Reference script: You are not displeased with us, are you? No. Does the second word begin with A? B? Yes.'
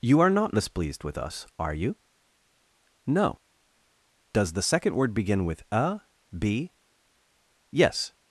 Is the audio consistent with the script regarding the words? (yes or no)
yes